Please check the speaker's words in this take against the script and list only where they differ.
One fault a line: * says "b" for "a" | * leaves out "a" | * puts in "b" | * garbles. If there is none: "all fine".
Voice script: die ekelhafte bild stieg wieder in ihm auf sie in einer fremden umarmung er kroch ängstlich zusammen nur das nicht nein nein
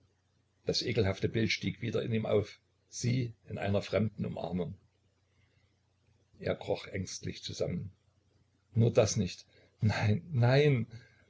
* says "das" for "die"